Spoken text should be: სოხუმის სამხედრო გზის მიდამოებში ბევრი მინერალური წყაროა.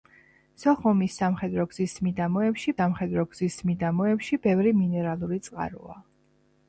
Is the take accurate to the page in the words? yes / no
no